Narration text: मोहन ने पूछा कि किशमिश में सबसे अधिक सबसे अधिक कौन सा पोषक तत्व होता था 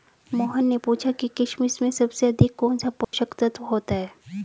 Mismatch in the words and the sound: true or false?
true